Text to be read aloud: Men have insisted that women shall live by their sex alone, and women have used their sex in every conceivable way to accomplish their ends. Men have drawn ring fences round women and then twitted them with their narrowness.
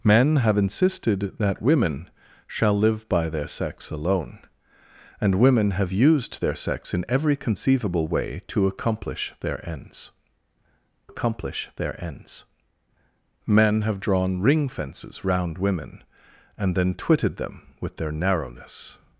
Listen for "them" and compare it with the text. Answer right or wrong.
right